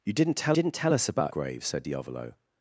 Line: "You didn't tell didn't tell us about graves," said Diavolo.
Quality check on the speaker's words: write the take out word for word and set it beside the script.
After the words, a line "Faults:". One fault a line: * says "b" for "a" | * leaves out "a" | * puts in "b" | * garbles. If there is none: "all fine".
"You didn't tell didn't tell us about graves," said Diavolo.
Faults:
all fine